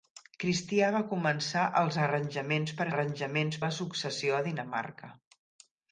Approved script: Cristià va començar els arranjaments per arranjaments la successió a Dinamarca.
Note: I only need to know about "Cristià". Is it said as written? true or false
true